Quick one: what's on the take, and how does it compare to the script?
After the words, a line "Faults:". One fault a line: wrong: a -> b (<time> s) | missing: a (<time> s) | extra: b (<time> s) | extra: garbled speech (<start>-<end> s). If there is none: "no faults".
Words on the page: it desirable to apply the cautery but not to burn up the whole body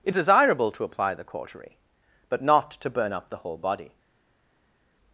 it desirable to apply the cautery but not to burn up the whole body
Faults:
no faults